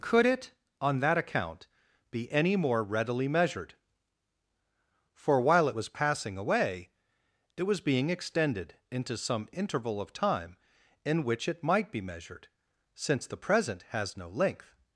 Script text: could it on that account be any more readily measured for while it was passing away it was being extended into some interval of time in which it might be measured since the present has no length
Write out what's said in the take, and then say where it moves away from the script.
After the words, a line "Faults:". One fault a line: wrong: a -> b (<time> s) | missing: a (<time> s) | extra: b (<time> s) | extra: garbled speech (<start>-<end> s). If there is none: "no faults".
could it on that account be any more readily measured for while it was passing away it was being extended into some interval of time in which it might be measured since the present has no length
Faults:
no faults